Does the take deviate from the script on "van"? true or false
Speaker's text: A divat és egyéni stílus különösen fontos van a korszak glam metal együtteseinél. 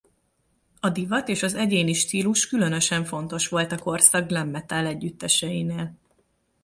true